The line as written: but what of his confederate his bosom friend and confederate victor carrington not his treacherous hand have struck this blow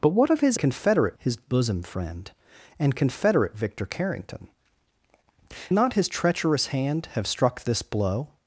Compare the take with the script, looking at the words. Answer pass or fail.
pass